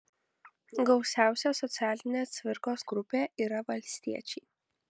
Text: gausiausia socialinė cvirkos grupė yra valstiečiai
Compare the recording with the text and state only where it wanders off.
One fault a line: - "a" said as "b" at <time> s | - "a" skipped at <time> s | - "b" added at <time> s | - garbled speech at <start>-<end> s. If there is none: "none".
none